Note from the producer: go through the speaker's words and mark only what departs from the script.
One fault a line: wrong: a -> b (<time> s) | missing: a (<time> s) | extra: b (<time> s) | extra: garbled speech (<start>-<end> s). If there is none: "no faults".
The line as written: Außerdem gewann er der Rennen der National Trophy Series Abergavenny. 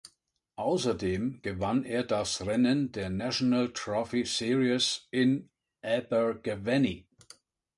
wrong: der -> das (2.0 s)
extra: in (5.1 s)